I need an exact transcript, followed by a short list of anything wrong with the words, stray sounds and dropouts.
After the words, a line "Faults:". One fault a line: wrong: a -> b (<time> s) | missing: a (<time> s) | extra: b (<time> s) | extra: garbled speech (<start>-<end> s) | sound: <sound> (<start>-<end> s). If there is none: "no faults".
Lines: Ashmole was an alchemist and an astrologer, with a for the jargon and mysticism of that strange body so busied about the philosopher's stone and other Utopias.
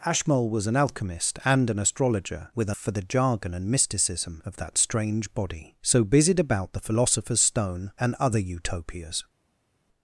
Ashmole was an alchemist and an astrologer, with a for the jargon and mysticism of that strange body so busied about the philosopher's stone and other Utopias.
Faults:
no faults